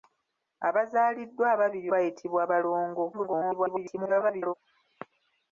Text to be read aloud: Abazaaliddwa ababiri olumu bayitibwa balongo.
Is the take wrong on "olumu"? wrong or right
wrong